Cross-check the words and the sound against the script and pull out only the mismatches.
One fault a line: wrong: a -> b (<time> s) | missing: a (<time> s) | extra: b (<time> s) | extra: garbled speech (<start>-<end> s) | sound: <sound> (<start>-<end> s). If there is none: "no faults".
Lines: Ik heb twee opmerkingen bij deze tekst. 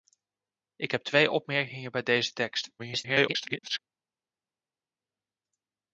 extra: garbled speech (2.8-3.8 s)